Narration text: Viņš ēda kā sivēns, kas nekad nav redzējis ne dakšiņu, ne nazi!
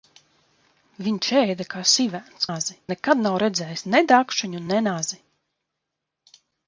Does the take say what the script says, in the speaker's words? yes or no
no